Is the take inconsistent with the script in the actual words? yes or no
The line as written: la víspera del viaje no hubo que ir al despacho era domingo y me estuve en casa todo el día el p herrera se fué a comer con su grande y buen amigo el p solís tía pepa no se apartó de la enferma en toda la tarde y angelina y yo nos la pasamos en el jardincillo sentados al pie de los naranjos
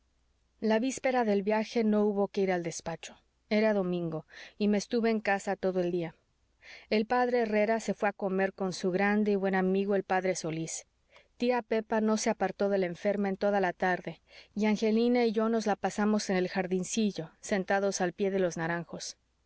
no